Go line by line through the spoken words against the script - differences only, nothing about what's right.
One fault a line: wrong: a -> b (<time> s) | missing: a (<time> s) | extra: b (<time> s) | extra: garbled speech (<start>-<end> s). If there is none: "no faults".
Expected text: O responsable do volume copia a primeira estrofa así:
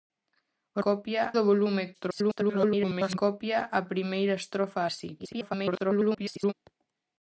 wrong: responsable -> copia (0.9 s)
extra: garbled speech (1.9-3.2 s)
extra: garbled speech (5.2-6.5 s)